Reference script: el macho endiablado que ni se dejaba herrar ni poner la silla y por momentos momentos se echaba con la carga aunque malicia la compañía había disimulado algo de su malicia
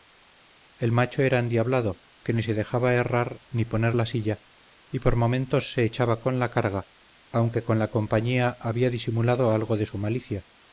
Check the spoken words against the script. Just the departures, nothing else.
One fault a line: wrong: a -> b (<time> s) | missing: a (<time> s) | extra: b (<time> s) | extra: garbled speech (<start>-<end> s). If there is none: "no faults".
extra: era (1.2 s)
missing: momentos (5.7 s)
wrong: malicia -> con (7.6 s)